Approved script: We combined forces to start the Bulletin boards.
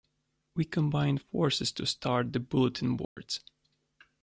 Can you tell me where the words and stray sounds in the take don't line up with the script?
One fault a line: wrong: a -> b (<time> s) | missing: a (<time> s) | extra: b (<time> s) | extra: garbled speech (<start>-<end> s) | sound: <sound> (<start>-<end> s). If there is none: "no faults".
sound: dropout (3.0-3.2 s)